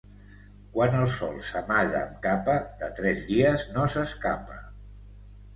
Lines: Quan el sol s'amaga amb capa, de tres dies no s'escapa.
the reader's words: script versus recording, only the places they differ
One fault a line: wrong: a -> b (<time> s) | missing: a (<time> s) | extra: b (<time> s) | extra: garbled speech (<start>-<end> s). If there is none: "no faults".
no faults